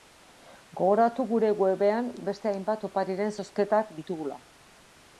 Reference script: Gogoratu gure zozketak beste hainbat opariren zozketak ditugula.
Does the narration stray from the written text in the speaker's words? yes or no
yes